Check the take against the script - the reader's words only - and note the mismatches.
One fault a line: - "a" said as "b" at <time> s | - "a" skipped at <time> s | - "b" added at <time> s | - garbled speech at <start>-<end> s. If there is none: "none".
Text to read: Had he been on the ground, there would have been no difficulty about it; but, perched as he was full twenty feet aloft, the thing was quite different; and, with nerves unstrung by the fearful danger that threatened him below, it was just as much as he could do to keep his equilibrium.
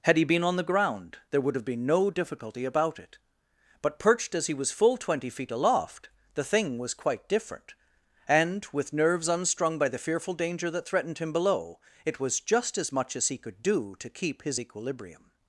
none